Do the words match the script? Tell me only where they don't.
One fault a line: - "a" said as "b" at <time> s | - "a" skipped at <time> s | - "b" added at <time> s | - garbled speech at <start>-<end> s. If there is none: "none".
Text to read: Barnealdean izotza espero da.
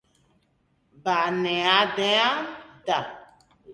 - "izotza espero" skipped at 2.5 s